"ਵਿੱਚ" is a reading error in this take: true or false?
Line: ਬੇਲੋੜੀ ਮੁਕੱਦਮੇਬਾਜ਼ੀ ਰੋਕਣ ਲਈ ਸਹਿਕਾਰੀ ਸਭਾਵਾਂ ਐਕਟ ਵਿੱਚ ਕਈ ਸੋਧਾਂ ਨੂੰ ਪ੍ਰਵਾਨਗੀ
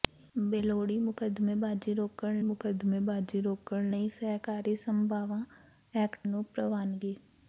true